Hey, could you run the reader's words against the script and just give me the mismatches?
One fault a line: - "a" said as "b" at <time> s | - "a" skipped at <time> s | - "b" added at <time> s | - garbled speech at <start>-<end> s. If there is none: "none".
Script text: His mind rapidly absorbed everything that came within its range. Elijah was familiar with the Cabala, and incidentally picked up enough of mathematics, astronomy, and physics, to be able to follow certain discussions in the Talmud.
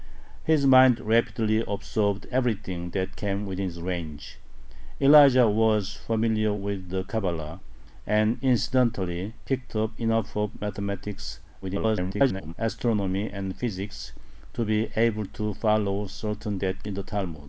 - garbled speech at 11.6-12.5 s
- "discussions" said as "that" at 16.6 s